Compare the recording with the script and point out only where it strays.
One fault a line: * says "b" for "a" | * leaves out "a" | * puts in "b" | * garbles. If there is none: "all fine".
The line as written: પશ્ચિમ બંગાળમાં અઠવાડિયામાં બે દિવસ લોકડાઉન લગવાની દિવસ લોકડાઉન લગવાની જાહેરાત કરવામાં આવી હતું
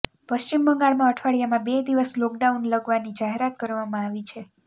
* leaves out "દિવસ લોકડાઉન લગવાની"
* says "છે" for "હતું"